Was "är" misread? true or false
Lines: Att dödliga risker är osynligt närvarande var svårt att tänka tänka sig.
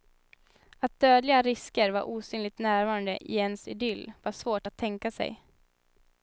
true